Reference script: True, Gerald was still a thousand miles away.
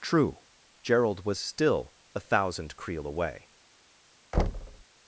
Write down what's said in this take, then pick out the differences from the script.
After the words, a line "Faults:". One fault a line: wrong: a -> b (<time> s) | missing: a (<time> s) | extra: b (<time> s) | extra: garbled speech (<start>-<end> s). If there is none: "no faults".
True, Gerald was still a thousand creel away.
Faults:
wrong: miles -> creel (2.8 s)